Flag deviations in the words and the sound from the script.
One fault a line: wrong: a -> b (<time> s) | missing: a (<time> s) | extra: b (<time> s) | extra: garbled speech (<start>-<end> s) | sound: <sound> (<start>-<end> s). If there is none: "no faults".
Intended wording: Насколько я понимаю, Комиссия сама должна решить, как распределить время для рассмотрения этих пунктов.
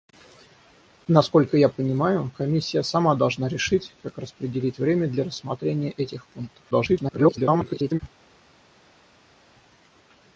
extra: garbled speech (6.7-8.0 s)